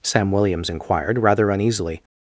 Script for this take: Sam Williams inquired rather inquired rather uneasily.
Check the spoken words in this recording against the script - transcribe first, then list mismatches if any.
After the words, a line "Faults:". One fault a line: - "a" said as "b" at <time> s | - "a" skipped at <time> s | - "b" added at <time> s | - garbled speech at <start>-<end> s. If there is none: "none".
Sam Williams inquired rather uneasily.
Faults:
- "inquired rather" skipped at 1.5 s